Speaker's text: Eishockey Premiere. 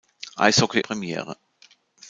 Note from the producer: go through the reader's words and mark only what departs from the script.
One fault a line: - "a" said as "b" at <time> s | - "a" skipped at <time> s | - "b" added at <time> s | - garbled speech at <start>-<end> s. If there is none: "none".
none